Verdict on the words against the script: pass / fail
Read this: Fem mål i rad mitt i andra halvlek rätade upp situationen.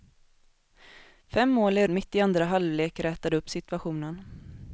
fail